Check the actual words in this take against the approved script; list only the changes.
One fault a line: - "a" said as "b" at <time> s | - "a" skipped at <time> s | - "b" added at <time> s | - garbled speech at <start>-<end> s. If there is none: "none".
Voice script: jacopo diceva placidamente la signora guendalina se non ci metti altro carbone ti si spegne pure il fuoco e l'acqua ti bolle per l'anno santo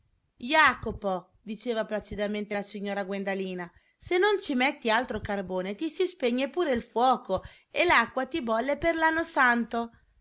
none